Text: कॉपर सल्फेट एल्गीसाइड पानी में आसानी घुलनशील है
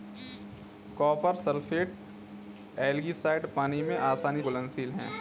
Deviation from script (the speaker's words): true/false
false